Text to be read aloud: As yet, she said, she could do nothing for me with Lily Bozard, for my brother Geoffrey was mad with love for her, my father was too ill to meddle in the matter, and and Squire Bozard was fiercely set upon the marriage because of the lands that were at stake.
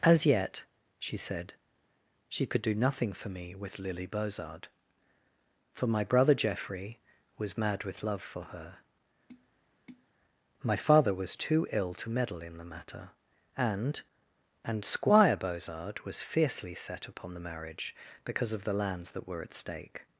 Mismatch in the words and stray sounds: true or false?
true